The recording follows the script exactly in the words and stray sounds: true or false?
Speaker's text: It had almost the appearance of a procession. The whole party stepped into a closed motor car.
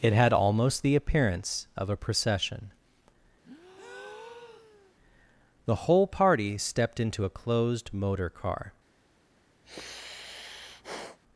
false